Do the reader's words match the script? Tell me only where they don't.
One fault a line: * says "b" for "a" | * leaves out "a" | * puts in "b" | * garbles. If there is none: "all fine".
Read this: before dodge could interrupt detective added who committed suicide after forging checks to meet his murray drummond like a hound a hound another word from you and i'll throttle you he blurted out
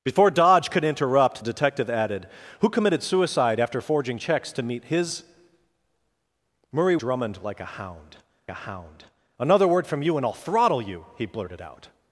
all fine